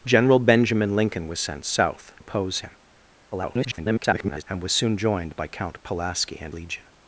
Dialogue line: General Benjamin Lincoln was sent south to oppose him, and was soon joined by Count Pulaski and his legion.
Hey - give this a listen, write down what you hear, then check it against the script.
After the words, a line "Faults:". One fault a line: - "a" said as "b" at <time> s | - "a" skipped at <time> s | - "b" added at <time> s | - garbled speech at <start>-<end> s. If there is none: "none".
General Benjamin Lincoln was sent south oppose him, [garbled] and was soon joined by Count Pulaski and legion.
Faults:
- "to" skipped at 2.1 s
- garbled speech at 3.3-4.4 s
- "his" skipped at 6.5 s